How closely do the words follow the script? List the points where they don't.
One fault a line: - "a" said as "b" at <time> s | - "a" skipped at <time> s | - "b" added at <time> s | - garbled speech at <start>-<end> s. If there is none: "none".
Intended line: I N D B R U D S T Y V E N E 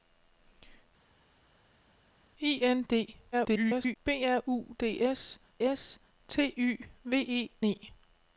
- garbled speech at 3.3-4.0 s
- "S" added at 5.6 s
- "N" skipped at 7.5 s